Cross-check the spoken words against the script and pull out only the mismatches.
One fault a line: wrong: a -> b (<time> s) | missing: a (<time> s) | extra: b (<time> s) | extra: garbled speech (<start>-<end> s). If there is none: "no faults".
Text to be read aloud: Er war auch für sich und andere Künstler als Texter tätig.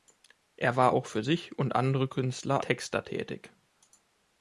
missing: als (2.6 s)